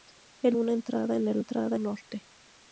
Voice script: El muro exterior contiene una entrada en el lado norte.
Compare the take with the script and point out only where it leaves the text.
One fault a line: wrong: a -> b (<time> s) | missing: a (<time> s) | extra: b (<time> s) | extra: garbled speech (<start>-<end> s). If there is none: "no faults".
missing: muro exterior contiene (0.6 s)
wrong: lado -> entrada (1.3 s)